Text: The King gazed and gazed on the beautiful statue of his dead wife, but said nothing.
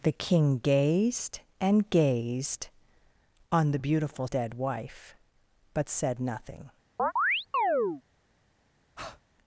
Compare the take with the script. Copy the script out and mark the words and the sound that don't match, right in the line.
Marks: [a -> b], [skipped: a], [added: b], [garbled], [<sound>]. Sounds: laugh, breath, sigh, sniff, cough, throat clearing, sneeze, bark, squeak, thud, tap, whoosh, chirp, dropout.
The King gazed and gazed on the beautiful [skipped: statue of his] dead wife, but said nothing. [chirp] [breath]